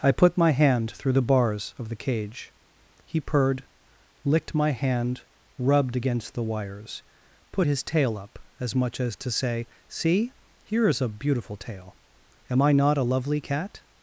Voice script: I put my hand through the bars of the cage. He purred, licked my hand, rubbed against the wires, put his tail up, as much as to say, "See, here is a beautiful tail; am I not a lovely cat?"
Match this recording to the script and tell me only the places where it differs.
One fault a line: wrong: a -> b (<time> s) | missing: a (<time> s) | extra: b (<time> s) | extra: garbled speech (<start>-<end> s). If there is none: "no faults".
no faults